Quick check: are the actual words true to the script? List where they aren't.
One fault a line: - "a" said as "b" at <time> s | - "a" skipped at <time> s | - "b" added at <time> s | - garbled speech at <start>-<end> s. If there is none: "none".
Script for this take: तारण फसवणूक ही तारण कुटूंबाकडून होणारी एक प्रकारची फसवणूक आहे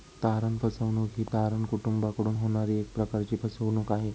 none